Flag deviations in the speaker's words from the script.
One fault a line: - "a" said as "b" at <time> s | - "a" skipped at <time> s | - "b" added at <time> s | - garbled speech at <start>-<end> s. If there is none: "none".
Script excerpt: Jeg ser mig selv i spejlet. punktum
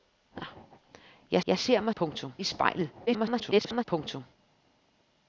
- "jeg" added at 1.5 s
- "selv" said as "punktum" at 2.0 s
- garbled speech at 3.1-3.8 s